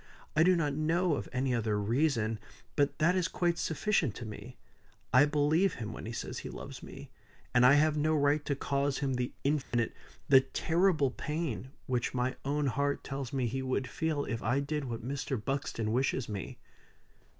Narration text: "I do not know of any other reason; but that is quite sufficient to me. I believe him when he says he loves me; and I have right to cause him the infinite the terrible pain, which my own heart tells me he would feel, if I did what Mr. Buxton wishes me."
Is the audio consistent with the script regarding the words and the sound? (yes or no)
no